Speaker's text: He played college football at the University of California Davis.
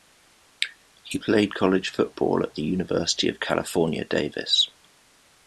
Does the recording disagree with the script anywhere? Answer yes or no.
no